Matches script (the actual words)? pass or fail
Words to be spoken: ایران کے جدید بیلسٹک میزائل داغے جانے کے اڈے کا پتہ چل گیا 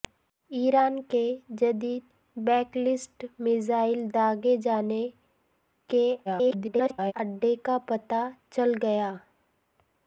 fail